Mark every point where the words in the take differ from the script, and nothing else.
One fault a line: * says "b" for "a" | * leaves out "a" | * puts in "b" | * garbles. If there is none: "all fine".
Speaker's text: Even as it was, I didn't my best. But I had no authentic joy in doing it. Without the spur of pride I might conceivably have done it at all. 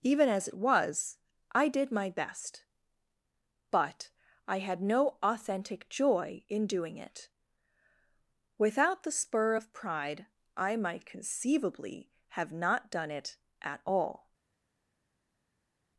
* says "did" for "didn't"
* puts in "not"